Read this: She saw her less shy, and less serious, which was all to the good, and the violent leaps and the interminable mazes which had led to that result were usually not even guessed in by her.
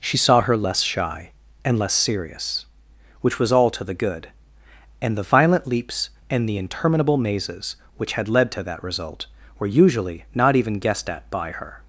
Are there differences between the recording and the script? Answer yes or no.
yes